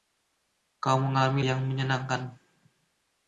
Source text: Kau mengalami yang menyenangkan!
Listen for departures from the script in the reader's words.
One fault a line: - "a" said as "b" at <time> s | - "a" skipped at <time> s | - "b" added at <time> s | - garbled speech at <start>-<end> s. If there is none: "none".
none